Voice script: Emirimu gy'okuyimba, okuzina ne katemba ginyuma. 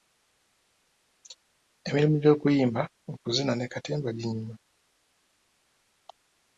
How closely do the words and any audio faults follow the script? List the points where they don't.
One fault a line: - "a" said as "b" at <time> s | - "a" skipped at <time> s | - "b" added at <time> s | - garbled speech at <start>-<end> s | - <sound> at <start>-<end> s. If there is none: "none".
none